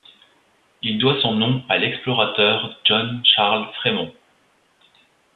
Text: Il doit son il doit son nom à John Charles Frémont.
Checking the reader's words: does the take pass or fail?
fail